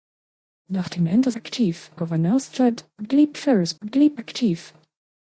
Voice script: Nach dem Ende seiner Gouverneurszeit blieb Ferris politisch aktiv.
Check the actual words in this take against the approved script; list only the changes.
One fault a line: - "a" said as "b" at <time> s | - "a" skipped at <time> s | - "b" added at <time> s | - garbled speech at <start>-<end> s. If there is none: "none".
- "seiner" said as "aktiv" at 1.3 s
- "politisch" said as "blieb" at 3.8 s